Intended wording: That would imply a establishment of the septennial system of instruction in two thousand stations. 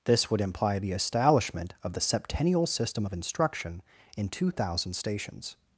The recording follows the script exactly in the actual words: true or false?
false